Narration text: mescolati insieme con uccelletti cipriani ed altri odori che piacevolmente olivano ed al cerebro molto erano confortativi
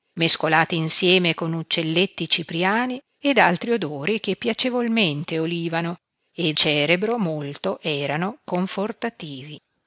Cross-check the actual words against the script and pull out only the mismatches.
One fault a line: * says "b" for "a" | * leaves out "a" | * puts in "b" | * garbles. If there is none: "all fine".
* leaves out "al"